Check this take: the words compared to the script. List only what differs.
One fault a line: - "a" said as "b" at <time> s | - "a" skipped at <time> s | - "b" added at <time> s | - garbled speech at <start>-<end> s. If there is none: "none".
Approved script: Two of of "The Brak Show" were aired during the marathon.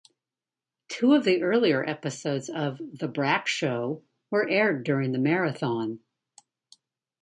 - "the earlier episodes" added at 1.2 s